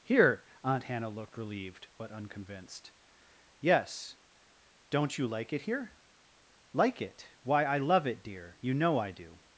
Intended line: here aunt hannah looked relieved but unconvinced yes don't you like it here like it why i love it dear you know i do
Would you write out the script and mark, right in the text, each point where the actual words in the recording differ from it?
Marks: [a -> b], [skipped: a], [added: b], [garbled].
here aunt hannah looked relieved but unconvinced yes don't you like it here like it why i love it dear you know i do